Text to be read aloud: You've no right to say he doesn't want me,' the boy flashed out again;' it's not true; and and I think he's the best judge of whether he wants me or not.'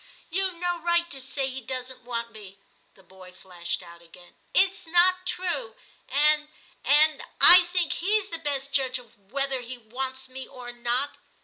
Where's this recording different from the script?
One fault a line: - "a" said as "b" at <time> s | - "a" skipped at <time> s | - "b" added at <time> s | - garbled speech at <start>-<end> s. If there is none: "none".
none